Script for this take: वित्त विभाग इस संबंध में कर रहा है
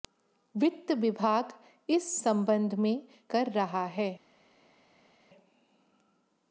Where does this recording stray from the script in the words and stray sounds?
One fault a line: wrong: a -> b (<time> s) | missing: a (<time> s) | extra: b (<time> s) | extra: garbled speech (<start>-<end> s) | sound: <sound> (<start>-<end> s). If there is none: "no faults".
no faults